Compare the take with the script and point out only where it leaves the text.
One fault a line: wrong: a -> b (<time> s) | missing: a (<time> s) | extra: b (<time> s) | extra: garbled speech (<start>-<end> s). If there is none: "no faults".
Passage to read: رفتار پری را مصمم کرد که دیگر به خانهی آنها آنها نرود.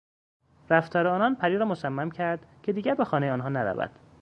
extra: آنان (1.1 s)
missing: آنها (3.5 s)